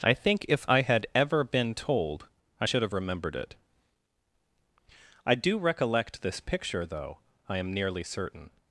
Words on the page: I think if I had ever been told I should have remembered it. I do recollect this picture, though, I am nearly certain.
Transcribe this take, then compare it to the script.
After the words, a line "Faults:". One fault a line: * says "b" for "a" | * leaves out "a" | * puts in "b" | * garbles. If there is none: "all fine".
I think if I had ever been told I should have remembered it. I do recollect this picture, though, I am nearly certain.
Faults:
all fine